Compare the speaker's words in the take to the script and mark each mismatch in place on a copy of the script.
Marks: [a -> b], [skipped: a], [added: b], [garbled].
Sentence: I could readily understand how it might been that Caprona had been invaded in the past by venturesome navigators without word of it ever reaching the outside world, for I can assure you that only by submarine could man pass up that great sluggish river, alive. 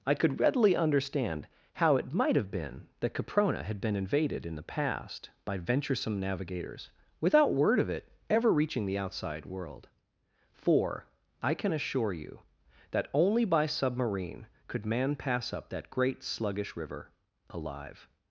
I could readily understand how it might [added: have] been that Caprona had been invaded in the past by venturesome navigators without word of it ever reaching the outside world, for I can assure you that only by submarine could man pass up that great sluggish river, alive.